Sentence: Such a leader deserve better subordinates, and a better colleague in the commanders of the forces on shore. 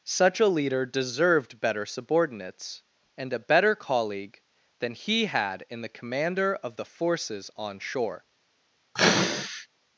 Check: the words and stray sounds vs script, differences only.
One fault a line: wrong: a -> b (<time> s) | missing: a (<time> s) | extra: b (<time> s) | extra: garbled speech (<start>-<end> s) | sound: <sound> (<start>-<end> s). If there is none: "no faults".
wrong: deserve -> deserved (0.8 s)
extra: than he had (4.8 s)
wrong: commanders -> commander (5.9 s)
sound: sneeze (9.0-9.7 s)